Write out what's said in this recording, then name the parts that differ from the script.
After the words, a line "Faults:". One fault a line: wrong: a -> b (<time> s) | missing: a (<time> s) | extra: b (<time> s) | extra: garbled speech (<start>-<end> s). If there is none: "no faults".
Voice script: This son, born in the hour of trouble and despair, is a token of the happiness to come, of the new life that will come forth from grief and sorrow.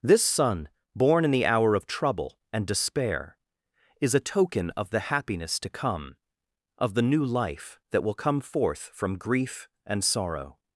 This son, born in the hour of trouble and despair, is a token of the happiness to come, of the new life that will come forth from grief and sorrow.
Faults:
no faults